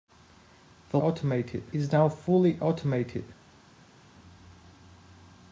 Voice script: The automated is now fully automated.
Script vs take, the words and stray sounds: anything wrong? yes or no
no